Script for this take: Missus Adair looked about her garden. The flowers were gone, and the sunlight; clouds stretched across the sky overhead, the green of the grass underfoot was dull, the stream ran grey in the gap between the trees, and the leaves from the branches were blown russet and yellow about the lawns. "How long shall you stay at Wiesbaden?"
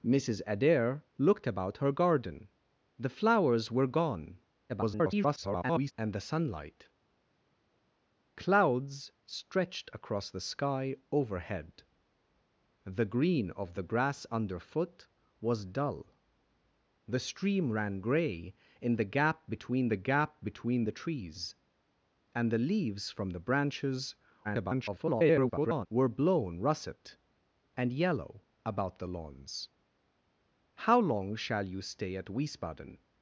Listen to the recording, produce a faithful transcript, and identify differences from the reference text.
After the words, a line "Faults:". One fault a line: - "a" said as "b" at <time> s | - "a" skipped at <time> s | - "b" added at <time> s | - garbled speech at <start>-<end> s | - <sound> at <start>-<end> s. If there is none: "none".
Missus Adair looked about her garden. The flowers were gone, [garbled] and the sunlight; clouds stretched across the sky overhead, the green of the grass underfoot was dull, the stream ran grey in the gap between the gap between the trees, and the leaves from the branches [garbled] were blown russet and yellow about the lawns. "How long shall you stay at Wiesbaden?"
Faults:
- garbled speech at 4.7-5.9 s
- "gap between the" added at 20.0 s
- garbled speech at 24.4-25.9 s